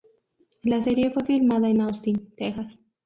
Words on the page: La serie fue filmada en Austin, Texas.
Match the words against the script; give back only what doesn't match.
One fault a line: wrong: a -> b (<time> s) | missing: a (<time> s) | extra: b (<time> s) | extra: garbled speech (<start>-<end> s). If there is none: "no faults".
no faults